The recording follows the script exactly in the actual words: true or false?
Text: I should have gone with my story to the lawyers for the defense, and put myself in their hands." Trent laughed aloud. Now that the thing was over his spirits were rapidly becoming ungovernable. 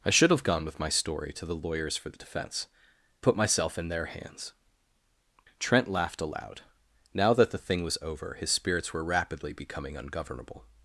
false